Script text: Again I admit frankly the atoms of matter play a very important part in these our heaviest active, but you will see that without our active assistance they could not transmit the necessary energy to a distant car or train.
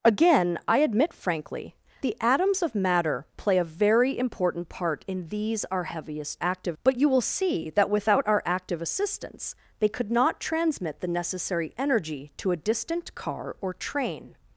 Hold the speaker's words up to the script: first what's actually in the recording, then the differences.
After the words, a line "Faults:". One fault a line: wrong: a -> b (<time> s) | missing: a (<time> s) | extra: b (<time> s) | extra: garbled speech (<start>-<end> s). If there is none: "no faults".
Again I admit frankly the atoms of matter play a very important part in these our heaviest active, but you will see that without our active assistance they could not transmit the necessary energy to a distant car or train.
Faults:
no faults